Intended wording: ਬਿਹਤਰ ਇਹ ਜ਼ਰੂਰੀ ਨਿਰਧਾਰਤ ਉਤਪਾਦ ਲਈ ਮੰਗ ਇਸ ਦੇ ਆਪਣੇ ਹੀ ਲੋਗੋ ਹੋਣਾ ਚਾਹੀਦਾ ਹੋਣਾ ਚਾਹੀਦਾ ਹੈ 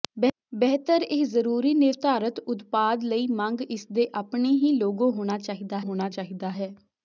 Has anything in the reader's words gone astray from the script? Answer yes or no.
no